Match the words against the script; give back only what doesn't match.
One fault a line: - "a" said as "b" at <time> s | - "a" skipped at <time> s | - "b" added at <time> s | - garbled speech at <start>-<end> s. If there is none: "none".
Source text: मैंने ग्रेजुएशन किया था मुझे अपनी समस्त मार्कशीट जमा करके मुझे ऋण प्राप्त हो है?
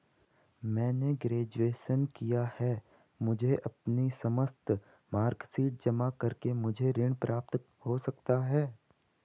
- "था" said as "है" at 2.6 s
- "सकता" added at 8.0 s